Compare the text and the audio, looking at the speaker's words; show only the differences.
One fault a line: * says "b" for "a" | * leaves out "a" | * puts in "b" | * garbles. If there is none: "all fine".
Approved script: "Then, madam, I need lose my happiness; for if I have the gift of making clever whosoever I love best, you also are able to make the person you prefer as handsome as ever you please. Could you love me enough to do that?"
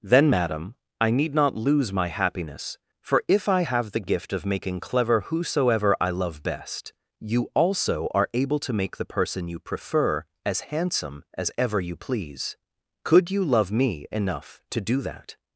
* puts in "not"